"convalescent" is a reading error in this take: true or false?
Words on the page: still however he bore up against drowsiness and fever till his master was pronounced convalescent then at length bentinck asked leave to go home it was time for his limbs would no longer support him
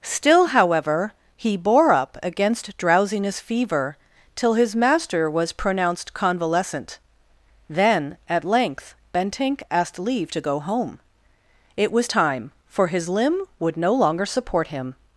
false